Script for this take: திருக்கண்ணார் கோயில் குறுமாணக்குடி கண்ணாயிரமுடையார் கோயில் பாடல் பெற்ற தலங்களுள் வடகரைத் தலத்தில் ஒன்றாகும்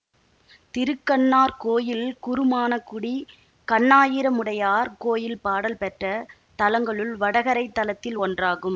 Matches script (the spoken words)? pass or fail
pass